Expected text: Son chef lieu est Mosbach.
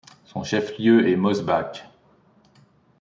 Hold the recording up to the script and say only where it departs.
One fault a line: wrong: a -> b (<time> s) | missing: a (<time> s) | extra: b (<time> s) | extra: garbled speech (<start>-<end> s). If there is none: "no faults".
no faults